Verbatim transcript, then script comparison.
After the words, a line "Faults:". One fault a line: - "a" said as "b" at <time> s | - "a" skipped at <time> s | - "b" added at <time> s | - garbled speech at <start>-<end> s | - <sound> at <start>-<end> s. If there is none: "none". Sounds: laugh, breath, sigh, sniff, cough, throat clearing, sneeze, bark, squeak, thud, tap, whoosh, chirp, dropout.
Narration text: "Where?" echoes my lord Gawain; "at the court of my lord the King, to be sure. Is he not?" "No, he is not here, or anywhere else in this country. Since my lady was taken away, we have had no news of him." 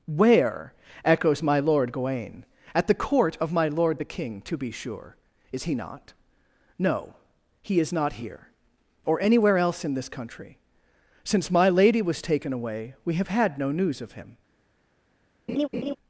"Where?" echoes my lord Gawain; "at the court of my lord the King, to be sure. Is he not?" "No, he is not here, or anywhere else in this country. Since my lady was taken away, we have had no news of him."
Faults:
- laugh at 15.5-16.0 s